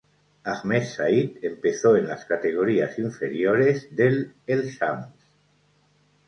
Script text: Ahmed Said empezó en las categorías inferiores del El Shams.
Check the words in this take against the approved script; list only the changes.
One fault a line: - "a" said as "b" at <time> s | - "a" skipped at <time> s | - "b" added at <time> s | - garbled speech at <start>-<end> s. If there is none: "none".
none